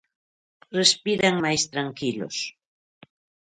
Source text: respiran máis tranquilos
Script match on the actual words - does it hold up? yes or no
yes